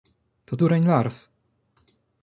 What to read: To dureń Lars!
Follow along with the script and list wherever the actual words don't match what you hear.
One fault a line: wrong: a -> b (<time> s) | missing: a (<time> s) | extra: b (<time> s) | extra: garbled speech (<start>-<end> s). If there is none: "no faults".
no faults